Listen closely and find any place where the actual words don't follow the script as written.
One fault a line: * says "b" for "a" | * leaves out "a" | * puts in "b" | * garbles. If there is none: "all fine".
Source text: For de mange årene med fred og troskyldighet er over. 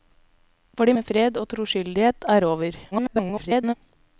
* leaves out "mange årene"
* garbles